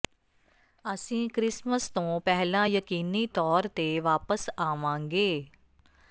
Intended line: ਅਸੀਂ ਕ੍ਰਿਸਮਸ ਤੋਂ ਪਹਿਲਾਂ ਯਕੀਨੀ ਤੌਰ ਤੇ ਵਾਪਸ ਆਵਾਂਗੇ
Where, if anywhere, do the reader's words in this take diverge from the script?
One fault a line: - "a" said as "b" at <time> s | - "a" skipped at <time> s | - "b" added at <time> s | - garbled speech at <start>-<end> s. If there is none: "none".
none